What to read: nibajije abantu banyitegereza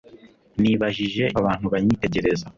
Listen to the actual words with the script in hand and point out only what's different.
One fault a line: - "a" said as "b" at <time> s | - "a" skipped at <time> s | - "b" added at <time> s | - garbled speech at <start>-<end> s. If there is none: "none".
none